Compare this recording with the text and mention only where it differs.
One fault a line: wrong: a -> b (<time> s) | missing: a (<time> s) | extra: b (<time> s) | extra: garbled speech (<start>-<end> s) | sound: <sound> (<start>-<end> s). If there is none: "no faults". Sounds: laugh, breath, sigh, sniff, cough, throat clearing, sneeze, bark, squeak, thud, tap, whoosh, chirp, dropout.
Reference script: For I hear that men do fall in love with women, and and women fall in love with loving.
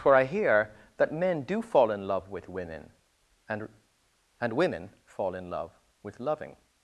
no faults